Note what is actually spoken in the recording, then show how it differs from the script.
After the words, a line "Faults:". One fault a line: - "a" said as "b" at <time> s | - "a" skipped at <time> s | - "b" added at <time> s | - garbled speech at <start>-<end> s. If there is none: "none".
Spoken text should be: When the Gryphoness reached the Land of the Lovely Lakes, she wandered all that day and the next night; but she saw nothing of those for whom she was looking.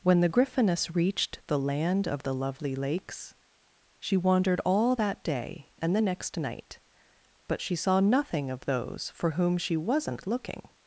When the Gryphoness reached the Land of the Lovely Lakes, she wandered all that day and the next night; but she saw nothing of those for whom she wasn't looking.
Faults:
- "was" said as "wasn't" at 9.8 s